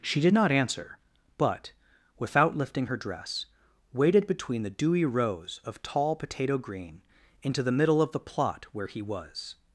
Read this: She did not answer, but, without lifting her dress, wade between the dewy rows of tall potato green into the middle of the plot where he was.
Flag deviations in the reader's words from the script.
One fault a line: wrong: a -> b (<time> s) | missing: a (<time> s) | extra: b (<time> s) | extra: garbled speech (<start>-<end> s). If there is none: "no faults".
wrong: wade -> waded (3.9 s)